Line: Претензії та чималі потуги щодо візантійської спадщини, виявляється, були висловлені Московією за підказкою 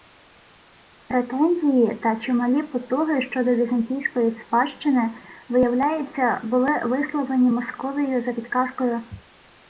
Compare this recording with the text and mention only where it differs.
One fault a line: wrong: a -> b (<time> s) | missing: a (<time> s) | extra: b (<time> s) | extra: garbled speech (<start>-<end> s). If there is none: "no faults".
no faults